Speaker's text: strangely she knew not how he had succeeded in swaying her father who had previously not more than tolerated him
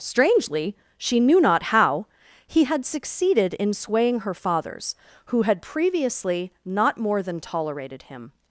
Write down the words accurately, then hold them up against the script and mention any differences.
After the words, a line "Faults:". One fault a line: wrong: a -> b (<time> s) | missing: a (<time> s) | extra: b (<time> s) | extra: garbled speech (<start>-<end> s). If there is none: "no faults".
strangely she knew not how he had succeeded in swaying her fathers who had previously not more than tolerated him
Faults:
wrong: father -> fathers (4.3 s)